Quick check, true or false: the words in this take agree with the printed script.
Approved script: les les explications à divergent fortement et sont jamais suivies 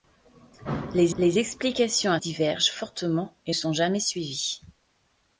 true